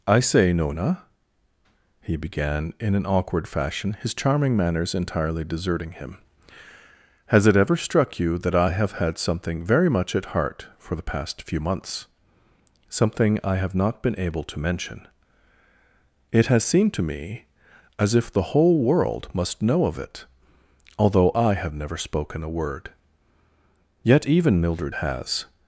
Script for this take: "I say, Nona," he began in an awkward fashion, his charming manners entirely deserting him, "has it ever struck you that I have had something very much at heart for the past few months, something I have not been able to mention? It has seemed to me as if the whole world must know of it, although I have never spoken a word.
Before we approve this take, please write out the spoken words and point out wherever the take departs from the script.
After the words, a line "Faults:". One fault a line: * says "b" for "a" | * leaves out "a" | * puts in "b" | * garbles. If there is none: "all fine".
"I say, Nona," he began in an awkward fashion, his charming manners entirely deserting him, "has it ever struck you that I have had something very much at heart for the past few months, something I have not been able to mention? It has seemed to me as if the whole world must know of it, although I have never spoken a word. Yet even Mildred has
Faults:
* puts in "Yet even Mildred has"